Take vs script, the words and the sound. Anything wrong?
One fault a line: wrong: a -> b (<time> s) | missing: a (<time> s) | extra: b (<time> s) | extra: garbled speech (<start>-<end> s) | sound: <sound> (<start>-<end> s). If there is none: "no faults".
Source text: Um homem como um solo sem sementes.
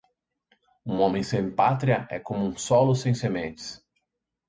extra: sem pátria é (1.2 s)